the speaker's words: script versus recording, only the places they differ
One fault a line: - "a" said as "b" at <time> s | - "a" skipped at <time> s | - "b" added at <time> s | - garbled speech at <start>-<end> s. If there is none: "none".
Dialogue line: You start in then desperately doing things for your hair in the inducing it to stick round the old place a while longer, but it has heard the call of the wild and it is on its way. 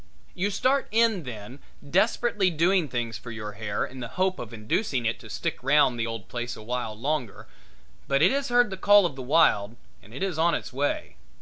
- "hope of" added at 4.1 s